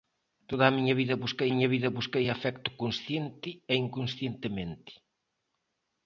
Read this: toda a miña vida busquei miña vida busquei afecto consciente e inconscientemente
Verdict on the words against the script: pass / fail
pass